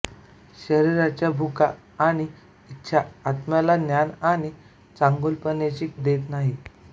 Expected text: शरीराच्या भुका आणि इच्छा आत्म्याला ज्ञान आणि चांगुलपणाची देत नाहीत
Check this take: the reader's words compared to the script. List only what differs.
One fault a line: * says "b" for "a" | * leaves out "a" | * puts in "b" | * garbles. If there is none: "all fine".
all fine